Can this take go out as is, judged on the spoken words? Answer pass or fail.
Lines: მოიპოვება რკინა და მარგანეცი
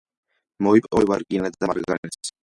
pass